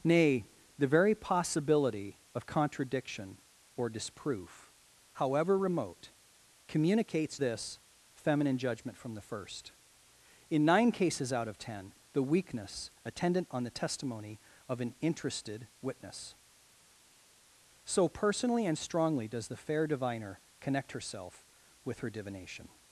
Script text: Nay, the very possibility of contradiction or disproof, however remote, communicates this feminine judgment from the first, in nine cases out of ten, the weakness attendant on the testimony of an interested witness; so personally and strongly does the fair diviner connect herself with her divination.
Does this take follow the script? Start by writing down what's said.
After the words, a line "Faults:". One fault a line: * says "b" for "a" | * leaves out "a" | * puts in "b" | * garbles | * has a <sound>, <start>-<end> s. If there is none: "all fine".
Nay, the very possibility of contradiction or disproof, however remote, communicates this feminine judgment from the first, in nine cases out of ten, the weakness attendant on the testimony of an interested witness; so personally and strongly does the fair diviner connect herself with her divination.
Faults:
all fine